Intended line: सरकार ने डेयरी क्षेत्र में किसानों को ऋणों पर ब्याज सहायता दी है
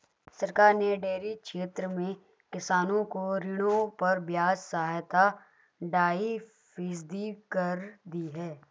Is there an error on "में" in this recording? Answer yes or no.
no